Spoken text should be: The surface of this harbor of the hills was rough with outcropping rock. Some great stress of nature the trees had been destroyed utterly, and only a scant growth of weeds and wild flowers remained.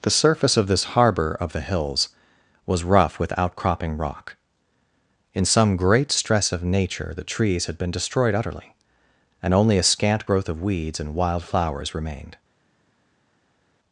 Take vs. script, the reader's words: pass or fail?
fail